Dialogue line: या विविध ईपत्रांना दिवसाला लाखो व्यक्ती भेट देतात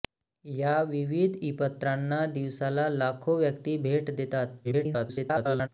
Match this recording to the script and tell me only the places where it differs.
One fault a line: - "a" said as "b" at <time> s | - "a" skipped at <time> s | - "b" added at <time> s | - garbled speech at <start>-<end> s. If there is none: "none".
- garbled speech at 4.6-5.7 s